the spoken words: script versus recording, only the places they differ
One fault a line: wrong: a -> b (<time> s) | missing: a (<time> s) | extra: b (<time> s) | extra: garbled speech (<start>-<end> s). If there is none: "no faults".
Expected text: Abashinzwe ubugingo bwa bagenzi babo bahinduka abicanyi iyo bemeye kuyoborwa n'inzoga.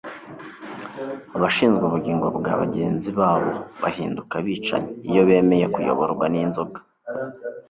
no faults